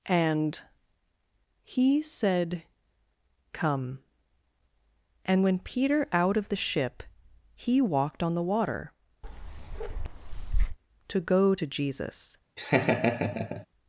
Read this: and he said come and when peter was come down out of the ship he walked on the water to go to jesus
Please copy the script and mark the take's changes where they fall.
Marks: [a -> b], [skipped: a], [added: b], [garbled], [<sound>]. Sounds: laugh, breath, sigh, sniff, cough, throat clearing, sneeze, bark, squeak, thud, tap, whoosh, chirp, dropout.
and he said come and when peter [skipped: was come down] out of the ship he walked on the water [bark] to go to jesus [laugh]